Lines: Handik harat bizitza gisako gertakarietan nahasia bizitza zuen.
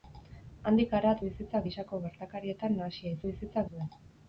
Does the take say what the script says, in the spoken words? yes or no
yes